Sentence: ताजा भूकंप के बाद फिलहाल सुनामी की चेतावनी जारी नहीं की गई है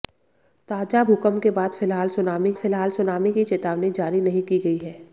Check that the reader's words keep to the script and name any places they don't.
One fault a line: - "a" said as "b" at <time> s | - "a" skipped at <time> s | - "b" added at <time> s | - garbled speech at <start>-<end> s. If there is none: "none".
- "फिलहाल सुनामी" added at 2.5 s